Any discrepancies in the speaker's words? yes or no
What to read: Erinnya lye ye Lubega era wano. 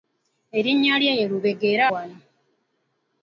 no